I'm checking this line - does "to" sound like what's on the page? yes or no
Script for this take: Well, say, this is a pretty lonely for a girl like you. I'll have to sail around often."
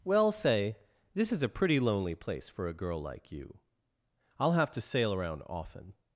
yes